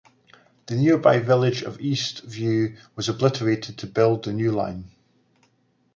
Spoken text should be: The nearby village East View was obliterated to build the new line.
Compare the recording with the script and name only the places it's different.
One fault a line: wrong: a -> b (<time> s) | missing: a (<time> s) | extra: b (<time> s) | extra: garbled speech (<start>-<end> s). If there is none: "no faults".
extra: of (1.6 s)